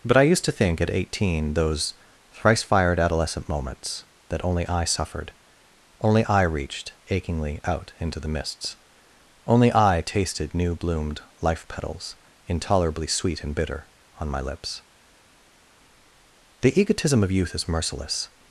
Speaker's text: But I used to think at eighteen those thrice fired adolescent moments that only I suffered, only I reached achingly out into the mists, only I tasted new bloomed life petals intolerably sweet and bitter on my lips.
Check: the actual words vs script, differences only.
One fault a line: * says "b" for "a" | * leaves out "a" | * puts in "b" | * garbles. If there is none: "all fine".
* puts in "The egotism of youth is merciless"